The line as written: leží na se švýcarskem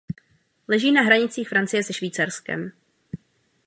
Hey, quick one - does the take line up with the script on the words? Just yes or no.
no